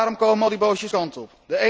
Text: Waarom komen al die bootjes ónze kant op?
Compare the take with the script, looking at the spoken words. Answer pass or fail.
fail